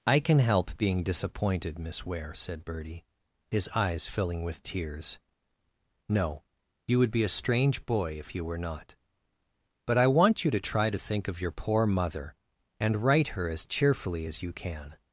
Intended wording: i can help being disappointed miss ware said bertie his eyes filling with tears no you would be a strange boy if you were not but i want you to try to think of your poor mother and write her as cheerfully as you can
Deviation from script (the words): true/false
false